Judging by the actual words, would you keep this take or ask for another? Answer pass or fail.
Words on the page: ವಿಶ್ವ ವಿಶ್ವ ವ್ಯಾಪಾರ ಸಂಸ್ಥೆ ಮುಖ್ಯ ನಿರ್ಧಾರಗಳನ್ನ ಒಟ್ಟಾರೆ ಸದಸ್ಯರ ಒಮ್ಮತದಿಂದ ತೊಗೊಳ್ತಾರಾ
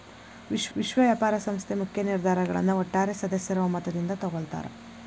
pass